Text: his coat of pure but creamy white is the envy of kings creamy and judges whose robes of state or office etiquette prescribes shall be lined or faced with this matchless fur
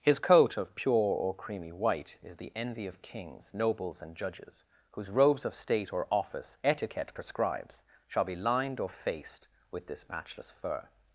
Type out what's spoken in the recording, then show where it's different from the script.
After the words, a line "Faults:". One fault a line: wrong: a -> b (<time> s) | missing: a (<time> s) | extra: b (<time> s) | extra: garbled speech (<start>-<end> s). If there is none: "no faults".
his coat of pure or creamy white is the envy of kings nobles and judges whose robes of state or office etiquette prescribes shall be lined or faced with this matchless fur
Faults:
wrong: but -> or (1.1 s)
wrong: creamy -> nobles (3.5 s)